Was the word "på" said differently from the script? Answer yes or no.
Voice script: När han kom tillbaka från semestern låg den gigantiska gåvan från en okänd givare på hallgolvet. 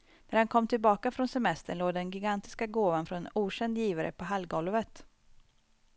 no